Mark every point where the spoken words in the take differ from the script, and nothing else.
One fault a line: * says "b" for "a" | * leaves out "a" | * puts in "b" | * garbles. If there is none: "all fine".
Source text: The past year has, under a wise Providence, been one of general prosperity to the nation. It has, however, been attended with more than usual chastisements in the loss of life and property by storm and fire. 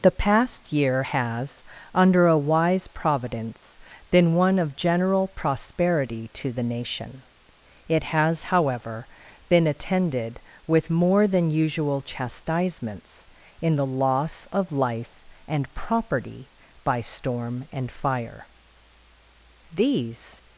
* puts in "These"